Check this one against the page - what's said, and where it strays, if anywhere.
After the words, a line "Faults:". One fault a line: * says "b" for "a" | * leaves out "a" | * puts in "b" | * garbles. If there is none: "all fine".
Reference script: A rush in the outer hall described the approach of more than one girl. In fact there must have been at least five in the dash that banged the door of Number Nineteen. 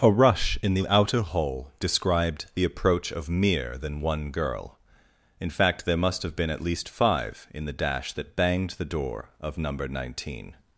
A rush in the outer hall described the approach of mere than one girl. In fact there must have been at least five in the dash that banged the door of Number Nineteen.
Faults:
* says "mere" for "more"